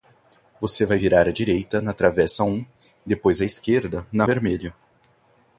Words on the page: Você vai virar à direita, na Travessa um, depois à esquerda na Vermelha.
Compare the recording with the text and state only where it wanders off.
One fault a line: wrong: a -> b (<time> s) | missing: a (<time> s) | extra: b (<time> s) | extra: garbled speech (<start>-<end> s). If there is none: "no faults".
no faults